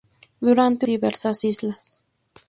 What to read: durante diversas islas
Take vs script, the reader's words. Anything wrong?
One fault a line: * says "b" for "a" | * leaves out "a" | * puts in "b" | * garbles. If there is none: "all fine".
all fine